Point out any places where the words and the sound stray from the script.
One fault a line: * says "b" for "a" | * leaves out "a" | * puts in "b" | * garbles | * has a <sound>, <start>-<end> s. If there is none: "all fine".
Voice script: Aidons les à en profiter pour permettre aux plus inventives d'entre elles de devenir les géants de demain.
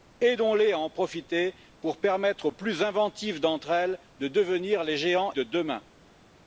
all fine